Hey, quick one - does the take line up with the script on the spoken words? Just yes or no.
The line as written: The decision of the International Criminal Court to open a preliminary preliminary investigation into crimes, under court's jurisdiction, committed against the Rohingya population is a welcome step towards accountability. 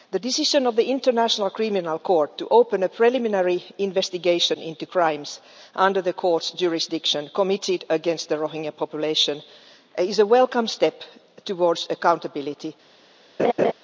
no